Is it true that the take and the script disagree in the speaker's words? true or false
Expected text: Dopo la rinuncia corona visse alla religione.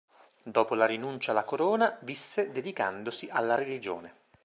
true